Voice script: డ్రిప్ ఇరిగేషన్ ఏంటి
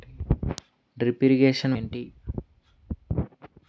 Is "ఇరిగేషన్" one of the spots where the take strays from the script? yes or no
no